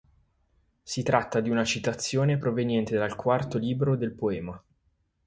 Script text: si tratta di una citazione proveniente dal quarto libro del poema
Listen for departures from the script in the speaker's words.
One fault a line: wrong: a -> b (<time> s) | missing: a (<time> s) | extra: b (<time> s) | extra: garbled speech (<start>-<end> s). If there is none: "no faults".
no faults